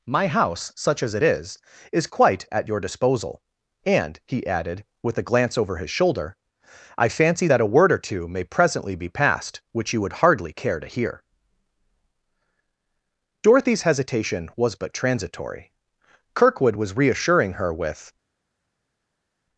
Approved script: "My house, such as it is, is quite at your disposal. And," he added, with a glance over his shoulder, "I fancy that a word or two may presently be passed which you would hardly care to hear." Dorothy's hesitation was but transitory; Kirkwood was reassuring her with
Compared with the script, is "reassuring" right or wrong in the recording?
right